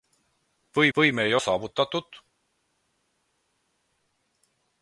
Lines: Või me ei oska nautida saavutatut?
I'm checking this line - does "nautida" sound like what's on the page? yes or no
no